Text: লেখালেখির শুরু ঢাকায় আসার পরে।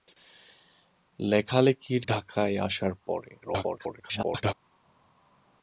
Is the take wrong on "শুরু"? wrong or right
wrong